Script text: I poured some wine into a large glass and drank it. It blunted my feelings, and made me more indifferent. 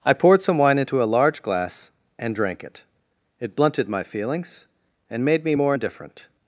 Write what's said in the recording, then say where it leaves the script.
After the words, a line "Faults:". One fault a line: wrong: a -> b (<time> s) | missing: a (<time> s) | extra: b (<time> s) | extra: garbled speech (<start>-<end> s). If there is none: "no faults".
I poured some wine into a large glass and drank it. It blunted my feelings, and made me more indifferent.
Faults:
no faults